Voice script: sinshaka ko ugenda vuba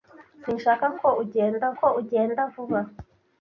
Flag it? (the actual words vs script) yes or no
yes